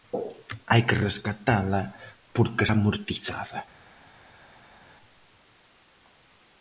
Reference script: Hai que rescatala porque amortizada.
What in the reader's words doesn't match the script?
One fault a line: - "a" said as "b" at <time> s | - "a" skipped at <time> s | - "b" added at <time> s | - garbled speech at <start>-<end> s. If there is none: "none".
none